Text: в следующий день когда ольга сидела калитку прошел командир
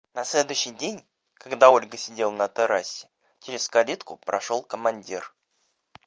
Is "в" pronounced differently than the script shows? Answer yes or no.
yes